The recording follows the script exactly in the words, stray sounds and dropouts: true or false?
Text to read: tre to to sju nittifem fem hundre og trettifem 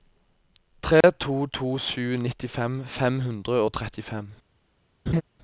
false